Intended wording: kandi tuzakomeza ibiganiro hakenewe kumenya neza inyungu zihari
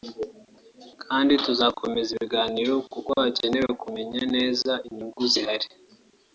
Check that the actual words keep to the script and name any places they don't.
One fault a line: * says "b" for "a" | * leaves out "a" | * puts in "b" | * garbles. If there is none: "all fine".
* puts in "kuko"